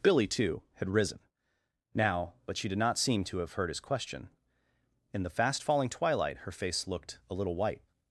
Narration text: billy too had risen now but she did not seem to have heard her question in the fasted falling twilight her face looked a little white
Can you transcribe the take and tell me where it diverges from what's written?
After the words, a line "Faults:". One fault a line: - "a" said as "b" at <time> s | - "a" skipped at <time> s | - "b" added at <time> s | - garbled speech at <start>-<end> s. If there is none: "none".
billy too had risen now but she did not seem to have heard his question in the fast falling twilight her face looked a little white
Faults:
- "her" said as "his" at 3.7 s
- "fasted" said as "fast" at 5.3 s